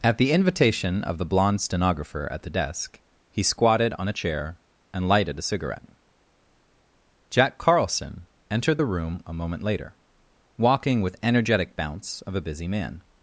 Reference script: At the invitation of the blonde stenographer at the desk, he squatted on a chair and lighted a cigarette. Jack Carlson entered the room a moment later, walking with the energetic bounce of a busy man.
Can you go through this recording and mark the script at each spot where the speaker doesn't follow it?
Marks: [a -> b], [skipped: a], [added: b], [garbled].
At the invitation of the blonde stenographer at the desk, he squatted on a chair and lighted a cigarette. Jack Carlson entered the room a moment later, walking with [skipped: the] energetic bounce of a busy man.